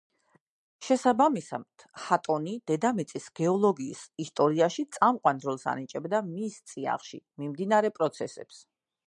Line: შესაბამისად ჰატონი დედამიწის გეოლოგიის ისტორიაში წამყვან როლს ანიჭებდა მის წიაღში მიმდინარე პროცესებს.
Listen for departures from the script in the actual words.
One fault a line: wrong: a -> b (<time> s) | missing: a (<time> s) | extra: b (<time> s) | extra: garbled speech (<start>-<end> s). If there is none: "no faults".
no faults